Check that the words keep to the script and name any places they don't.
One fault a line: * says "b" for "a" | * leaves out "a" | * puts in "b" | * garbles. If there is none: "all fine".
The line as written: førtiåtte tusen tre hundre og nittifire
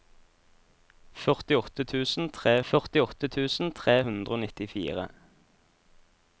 * puts in "førtiåtte tusen tre"